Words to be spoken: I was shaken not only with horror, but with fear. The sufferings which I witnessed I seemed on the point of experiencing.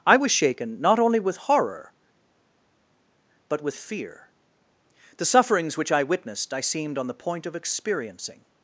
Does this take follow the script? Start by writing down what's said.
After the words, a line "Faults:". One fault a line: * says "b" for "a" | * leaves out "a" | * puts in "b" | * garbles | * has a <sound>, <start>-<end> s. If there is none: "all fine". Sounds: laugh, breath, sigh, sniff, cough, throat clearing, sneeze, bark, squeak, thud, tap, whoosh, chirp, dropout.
I was shaken not only with horror, but with fear. The sufferings which I witnessed I seemed on the point of experiencing.
Faults:
all fine